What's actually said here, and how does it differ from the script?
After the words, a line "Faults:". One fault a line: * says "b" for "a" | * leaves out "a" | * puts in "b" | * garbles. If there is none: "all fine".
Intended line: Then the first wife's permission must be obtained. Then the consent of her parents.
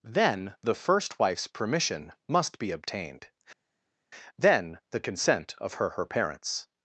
Then the first wife's permission must be obtained. Then the consent of her her parents.
Faults:
* puts in "her"